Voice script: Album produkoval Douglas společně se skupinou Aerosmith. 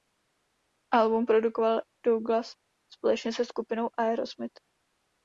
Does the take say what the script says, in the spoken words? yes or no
yes